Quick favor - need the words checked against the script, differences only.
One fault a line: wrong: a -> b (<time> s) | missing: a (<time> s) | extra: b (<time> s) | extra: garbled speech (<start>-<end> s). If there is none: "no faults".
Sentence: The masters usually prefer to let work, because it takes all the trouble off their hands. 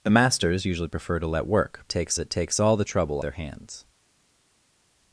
wrong: because -> takes (1.9 s)
missing: off (3.2 s)